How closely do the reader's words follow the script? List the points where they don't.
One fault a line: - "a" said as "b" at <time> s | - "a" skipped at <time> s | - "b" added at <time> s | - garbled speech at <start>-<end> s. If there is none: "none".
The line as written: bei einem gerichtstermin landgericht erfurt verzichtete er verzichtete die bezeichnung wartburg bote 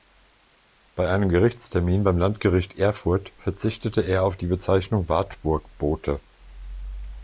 - "beim" added at 2.0 s
- "verzichtete" said as "auf" at 4.2 s